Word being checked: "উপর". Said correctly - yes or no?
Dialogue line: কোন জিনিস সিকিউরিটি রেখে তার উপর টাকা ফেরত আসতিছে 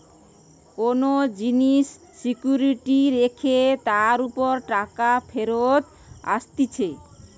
yes